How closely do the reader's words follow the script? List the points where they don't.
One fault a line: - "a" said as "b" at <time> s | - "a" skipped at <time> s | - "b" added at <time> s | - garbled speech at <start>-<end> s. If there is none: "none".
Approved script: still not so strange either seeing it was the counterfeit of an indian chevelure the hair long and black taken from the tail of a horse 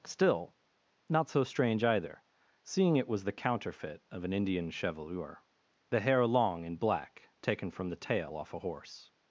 - "of" said as "off" at 8.4 s